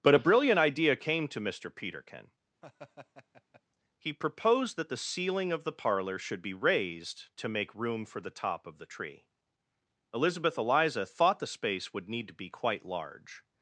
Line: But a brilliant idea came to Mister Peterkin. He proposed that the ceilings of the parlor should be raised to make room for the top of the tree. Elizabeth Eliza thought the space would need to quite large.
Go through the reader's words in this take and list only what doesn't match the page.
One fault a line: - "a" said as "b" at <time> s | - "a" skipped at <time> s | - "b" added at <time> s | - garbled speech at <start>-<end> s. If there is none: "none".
- "ceilings" said as "ceiling" at 5.0 s
- "be" added at 12.3 s